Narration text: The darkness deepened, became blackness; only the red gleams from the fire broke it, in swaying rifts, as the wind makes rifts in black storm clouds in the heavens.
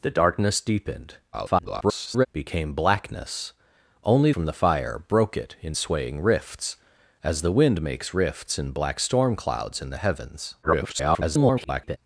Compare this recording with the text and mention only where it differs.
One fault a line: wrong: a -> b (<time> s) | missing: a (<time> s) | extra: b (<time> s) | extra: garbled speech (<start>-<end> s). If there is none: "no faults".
extra: garbled speech (1.3-2.3 s)
missing: the red gleams (4.3 s)
extra: garbled speech (10.6-12.0 s)